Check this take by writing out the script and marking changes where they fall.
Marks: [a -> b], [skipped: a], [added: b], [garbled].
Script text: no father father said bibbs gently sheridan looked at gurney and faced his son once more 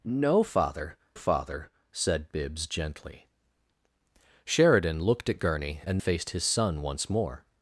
no father father said bibbs gently sheridan looked at gurney and faced his son once more